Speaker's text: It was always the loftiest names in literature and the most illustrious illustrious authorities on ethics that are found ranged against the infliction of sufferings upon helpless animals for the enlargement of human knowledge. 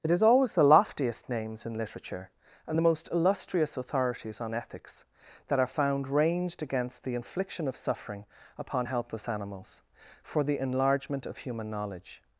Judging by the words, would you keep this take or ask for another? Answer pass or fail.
fail